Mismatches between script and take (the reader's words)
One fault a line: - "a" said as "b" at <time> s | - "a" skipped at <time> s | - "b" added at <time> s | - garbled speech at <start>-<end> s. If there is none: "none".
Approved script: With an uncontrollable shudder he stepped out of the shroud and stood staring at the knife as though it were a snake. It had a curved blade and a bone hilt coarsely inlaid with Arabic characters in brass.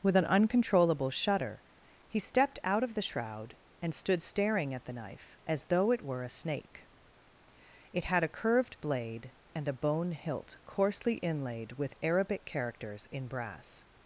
none